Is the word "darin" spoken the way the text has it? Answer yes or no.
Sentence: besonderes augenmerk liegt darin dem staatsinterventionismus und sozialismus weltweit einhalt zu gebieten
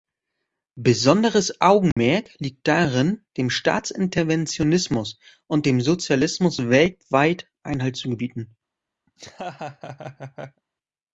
yes